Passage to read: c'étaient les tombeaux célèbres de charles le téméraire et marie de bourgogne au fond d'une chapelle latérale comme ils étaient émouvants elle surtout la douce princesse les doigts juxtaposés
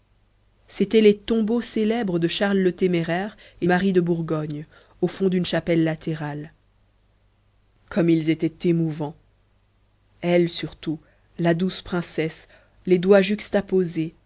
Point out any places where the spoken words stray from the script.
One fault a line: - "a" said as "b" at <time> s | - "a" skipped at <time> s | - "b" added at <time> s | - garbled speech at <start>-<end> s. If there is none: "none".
none